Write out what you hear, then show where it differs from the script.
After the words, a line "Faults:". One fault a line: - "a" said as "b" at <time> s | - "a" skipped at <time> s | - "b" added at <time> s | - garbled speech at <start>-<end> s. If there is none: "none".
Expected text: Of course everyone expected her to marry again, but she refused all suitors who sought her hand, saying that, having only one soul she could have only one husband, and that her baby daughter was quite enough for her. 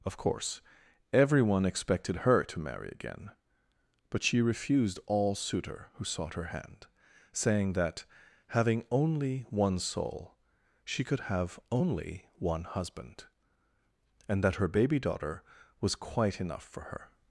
Of course everyone expected her to marry again, but she refused all suitor who sought her hand, saying that, having only one soul she could have only one husband, and that her baby daughter was quite enough for her.
Faults:
- "suitors" said as "suitor" at 5.3 s